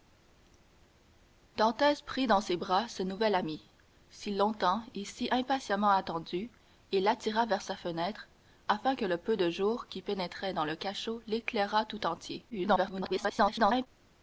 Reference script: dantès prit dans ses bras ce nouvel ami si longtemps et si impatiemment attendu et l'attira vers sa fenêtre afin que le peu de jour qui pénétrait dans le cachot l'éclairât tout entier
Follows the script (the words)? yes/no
no